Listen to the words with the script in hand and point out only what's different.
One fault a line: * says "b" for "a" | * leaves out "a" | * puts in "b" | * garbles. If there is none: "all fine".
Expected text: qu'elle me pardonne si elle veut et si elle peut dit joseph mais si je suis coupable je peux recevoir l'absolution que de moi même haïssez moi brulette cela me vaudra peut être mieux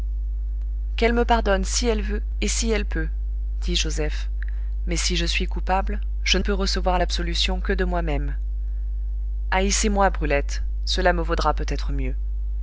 all fine